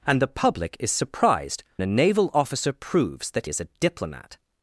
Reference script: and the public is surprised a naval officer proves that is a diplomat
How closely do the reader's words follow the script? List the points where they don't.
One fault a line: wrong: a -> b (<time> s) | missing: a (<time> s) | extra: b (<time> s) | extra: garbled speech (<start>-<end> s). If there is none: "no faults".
no faults